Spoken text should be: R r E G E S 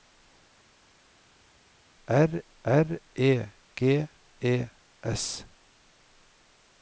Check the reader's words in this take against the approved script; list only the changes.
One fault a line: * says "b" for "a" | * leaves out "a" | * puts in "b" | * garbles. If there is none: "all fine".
all fine